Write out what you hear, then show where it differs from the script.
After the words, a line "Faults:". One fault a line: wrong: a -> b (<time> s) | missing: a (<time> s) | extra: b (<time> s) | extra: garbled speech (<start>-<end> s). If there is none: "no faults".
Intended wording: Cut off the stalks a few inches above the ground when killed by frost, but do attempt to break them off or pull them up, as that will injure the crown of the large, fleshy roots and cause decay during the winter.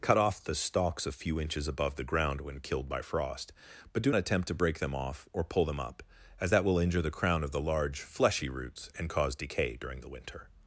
Cut off the stalks a few inches above the ground when killed by frost, but do attempt to break them off or pull them up, as that will injure the crown of the large, fleshy roots and cause decay during the winter.
Faults:
no faults